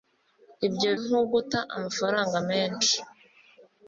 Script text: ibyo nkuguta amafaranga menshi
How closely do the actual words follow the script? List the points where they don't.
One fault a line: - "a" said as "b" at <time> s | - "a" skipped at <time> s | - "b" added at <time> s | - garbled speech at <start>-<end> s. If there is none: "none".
none